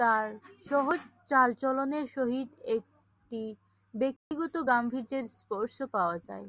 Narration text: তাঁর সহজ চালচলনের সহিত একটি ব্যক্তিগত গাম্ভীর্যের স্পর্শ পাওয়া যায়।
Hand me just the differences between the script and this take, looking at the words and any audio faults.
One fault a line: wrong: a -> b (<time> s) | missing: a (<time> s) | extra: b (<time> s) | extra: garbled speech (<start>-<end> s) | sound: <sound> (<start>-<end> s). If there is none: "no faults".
sound: dropout (4.2-4.3 s)